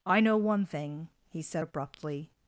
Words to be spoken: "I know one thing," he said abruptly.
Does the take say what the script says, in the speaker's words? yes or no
yes